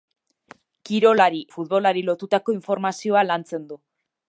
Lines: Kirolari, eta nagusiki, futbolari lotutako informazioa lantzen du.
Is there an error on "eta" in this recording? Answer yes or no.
yes